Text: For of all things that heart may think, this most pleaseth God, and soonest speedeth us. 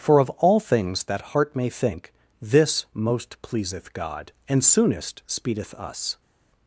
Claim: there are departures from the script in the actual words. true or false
false